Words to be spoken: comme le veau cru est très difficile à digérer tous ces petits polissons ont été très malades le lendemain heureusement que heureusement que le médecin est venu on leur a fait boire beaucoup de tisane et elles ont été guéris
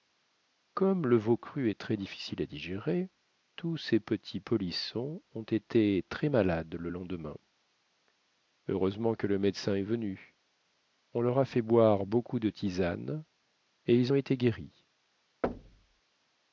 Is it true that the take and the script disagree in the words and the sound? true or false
true